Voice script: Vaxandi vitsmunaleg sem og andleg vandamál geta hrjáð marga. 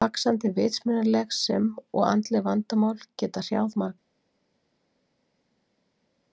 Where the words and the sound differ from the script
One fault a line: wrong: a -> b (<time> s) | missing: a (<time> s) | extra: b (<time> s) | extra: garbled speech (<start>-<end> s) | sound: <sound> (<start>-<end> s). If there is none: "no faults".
no faults